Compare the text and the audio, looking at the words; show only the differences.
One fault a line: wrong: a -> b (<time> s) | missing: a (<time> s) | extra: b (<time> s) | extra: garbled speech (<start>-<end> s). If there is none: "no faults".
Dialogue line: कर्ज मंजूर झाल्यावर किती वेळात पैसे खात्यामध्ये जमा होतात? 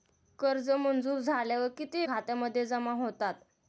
missing: वेळात पैसे (2.1 s)